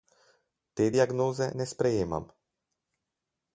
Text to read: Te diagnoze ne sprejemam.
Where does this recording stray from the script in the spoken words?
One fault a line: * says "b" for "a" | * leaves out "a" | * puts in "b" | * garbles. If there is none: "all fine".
all fine